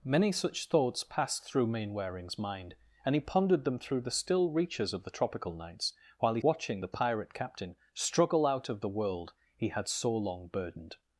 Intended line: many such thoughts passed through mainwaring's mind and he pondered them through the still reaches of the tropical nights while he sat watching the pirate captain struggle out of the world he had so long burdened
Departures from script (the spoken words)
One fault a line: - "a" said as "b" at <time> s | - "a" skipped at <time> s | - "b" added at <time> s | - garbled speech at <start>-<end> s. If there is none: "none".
- "sat" skipped at 6.4 s